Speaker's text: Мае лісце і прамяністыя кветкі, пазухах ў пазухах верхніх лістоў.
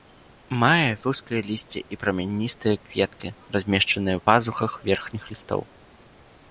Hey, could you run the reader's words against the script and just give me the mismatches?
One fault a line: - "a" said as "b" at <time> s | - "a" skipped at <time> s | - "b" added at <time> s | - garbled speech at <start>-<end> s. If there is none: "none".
- "вузкае" added at 1.0 s
- "пазухах" said as "размешчаныя" at 3.6 s